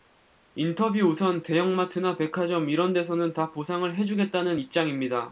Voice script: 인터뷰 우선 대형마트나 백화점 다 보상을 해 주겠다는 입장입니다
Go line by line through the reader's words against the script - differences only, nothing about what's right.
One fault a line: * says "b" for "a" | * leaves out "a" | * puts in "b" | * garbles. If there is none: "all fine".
* puts in "이런 데서는"